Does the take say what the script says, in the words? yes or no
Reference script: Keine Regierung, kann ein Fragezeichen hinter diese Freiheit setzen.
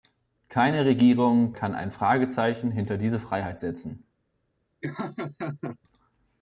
yes